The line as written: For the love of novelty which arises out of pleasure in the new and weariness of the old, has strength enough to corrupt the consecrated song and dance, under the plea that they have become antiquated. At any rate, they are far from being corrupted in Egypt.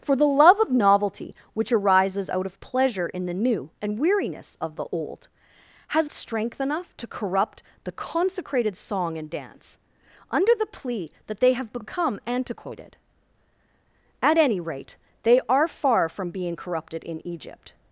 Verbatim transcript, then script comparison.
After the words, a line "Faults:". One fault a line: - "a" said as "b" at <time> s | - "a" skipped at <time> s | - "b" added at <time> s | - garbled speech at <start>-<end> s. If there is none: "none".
For the love of novelty which arises out of pleasure in the new and weariness of the old, has strength enough to corrupt the consecrated song and dance, under the plea that they have become antiquated. At any rate, they are far from being corrupted in Egypt.
Faults:
none